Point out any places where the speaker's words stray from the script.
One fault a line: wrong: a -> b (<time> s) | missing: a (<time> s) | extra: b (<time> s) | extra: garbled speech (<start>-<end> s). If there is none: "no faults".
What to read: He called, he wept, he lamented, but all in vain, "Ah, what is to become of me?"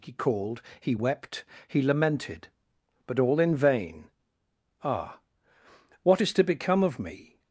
no faults